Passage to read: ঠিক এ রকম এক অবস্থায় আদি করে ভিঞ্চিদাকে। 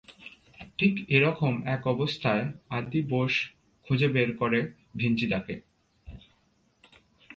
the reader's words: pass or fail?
fail